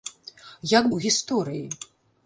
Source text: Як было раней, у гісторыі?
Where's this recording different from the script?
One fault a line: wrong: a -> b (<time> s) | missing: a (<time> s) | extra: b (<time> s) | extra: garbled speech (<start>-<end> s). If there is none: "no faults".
missing: было раней (0.9 s)